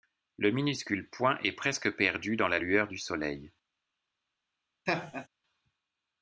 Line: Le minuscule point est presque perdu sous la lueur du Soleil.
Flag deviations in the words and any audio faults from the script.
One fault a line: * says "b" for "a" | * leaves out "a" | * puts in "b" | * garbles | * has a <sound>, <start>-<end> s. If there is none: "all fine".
* says "dans" for "sous"
* has a laugh, 4.9-5.3 s